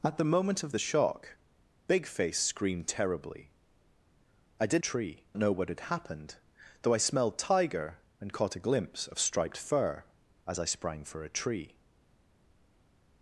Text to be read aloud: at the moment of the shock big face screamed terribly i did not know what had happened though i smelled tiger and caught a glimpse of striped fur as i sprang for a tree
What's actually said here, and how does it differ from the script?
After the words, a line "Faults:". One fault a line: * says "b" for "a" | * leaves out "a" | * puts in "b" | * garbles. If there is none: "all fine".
at the moment of the shock big face screamed terribly i did tree know what had happened though i smelled tiger and caught a glimpse of striped fur as i sprang for a tree
Faults:
* says "tree" for "not"